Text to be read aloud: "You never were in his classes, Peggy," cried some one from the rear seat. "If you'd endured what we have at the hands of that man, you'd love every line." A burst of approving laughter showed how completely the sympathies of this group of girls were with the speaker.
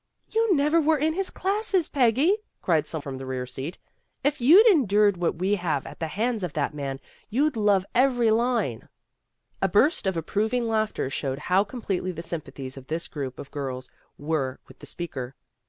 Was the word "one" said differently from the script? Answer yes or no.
yes